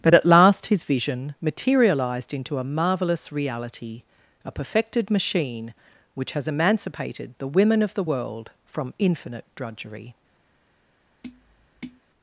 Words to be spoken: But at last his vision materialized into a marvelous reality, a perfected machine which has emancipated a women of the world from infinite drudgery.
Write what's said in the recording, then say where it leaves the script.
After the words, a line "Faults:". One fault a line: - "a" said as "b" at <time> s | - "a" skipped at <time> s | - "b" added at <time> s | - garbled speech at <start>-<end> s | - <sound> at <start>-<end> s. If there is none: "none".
But at last his vision materialized into a marvelous reality, a perfected machine which has emancipated the women of the world from infinite drudgery.
Faults:
- "a" said as "the" at 7.4 s
- tap at 11.2-12.0 s